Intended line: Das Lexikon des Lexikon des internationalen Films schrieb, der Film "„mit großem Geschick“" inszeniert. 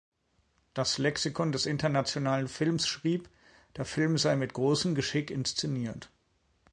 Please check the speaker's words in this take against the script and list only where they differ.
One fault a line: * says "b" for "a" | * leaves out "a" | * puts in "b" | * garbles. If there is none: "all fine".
* leaves out "Lexikon des"
* puts in "sei"